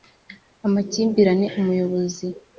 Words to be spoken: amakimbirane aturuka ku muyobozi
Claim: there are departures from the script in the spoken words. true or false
true